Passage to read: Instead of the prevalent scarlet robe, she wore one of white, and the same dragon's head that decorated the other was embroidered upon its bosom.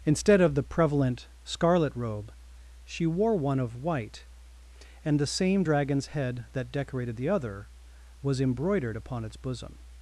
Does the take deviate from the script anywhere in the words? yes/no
no